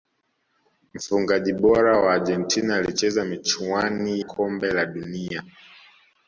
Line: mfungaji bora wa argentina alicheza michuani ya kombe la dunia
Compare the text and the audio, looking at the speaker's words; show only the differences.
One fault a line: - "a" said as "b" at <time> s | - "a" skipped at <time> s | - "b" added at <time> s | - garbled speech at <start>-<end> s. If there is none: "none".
- "ya" skipped at 4.2 s